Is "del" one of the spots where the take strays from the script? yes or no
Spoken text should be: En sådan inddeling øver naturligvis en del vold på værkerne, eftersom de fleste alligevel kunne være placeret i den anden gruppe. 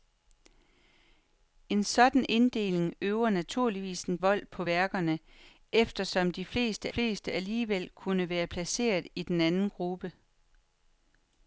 yes